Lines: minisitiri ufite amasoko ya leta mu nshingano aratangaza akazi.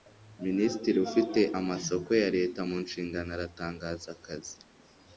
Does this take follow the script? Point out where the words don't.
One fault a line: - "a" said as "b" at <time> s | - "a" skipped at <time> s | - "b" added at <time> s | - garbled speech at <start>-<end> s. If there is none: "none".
none